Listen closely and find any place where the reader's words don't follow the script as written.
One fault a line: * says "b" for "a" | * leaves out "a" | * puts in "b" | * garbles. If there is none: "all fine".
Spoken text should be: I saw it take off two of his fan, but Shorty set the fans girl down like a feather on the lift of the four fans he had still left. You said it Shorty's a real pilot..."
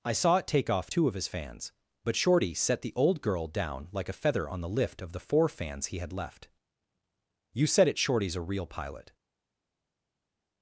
* says "fans" for "fan"
* says "old" for "fans"
* leaves out "still"